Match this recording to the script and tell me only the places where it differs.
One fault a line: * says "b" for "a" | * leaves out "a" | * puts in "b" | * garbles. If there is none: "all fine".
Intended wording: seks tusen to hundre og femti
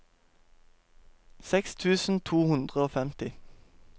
all fine